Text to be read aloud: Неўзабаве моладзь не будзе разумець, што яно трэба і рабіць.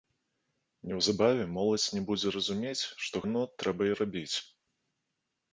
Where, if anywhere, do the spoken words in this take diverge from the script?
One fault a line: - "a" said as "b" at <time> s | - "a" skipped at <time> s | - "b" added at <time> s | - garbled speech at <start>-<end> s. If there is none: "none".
none